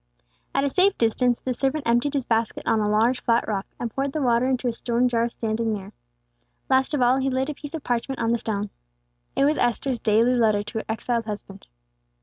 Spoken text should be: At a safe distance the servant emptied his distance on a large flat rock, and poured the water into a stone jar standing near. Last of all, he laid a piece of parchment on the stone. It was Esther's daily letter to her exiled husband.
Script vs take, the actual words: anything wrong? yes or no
yes